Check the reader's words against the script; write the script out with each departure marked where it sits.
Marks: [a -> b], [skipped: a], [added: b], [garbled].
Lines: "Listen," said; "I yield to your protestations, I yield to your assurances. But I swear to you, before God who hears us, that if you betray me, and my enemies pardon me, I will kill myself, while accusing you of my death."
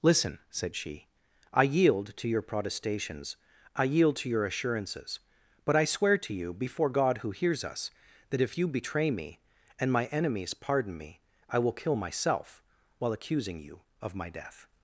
"Listen," said; [added: she] "I yield to your protestations, I yield to your assurances. But I swear to you, before God who hears us, that if you betray me, and my enemies pardon me, I will kill myself, while accusing you of my death."